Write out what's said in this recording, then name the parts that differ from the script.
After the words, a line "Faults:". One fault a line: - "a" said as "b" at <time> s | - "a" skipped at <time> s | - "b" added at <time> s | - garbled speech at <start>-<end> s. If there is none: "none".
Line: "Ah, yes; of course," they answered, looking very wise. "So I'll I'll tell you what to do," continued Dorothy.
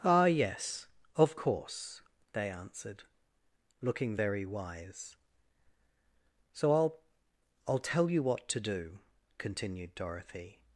"Ah, yes; of course," they answered, looking very wise. "So I'll I'll tell you what to do," continued Dorothy.
Faults:
none